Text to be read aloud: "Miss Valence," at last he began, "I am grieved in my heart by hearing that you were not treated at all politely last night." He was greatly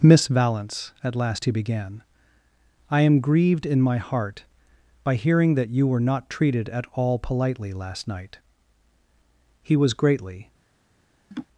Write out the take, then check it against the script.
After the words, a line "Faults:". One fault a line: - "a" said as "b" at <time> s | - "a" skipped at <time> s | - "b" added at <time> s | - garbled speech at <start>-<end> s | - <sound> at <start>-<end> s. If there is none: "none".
"Miss Valence," at last he began, "I am grieved in my heart by hearing that you were not treated at all politely last night." He was greatly
Faults:
- laugh at 11.3-11.5 s